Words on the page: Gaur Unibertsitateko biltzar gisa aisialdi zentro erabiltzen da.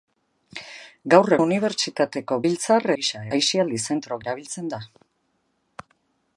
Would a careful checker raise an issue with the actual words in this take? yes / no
no